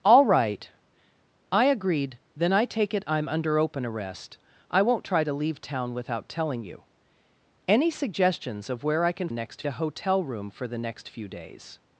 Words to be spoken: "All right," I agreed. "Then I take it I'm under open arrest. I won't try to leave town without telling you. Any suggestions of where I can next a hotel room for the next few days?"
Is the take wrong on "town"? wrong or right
right